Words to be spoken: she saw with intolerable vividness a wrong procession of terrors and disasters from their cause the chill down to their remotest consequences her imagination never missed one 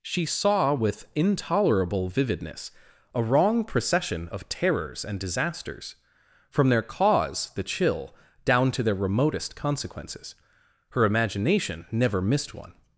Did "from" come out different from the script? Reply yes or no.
no